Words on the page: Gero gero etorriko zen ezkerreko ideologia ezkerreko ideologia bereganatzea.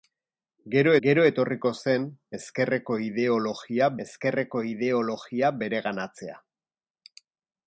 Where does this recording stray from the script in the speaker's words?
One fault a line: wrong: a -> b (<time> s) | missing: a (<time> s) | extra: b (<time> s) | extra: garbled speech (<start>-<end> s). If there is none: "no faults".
no faults